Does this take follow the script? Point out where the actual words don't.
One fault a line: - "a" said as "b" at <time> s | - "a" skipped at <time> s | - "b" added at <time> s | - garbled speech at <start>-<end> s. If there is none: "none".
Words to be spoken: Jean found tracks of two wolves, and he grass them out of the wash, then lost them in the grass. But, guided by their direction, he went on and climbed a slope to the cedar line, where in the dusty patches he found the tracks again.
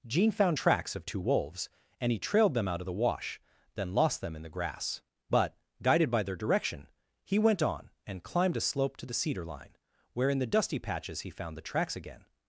- "grass" said as "trailed" at 2.2 s